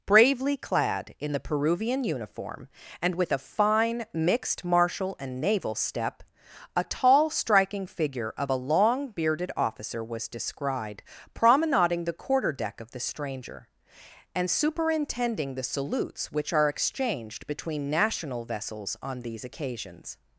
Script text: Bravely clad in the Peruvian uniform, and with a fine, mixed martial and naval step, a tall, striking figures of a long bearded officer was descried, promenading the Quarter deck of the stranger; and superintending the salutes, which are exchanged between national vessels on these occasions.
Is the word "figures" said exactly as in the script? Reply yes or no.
no